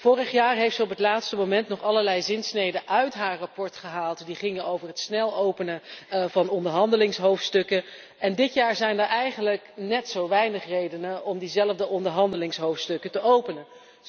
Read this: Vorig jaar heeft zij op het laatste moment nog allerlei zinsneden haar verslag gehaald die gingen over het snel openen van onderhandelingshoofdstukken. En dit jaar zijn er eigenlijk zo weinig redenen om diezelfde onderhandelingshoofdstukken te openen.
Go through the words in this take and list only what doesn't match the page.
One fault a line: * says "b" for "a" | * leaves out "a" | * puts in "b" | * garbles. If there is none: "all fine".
* puts in "uit"
* puts in "net"